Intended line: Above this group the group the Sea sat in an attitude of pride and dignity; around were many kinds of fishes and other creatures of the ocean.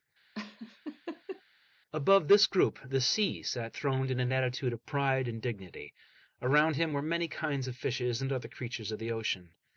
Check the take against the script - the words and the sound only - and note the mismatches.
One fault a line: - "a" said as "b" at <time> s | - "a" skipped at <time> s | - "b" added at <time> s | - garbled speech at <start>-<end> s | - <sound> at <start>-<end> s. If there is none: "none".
- laugh at 0.3-1.4 s
- "group the" skipped at 3.0 s
- "throned" added at 3.7 s
- "him" added at 6.7 s